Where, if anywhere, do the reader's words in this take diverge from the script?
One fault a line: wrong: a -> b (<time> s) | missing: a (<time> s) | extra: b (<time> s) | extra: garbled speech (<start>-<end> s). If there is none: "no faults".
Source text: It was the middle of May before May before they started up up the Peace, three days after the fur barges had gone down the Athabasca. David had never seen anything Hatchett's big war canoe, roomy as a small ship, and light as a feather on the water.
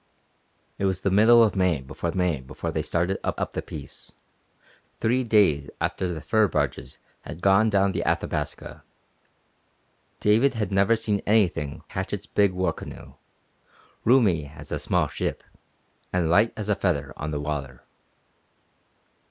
no faults